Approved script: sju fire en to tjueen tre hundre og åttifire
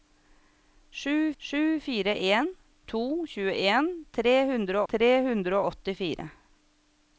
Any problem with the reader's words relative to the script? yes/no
yes